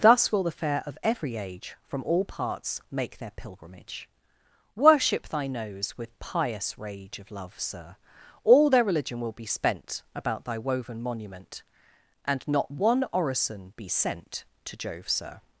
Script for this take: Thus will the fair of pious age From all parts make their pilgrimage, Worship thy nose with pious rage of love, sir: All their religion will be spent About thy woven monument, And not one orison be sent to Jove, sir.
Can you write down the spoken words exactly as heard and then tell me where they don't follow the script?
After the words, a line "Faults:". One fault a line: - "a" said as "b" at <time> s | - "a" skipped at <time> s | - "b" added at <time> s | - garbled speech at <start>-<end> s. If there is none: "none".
Thus will the fair of every age From all parts make their pilgrimage, Worship thy nose with pious rage of love, sir: All their religion will be spent About thy woven monument, And not one orison be sent to Jove, sir.
Faults:
- "pious" said as "every" at 1.0 s